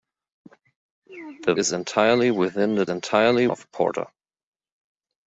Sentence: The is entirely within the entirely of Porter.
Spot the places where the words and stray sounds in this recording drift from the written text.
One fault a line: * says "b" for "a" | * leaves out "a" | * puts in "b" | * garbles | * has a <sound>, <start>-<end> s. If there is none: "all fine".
all fine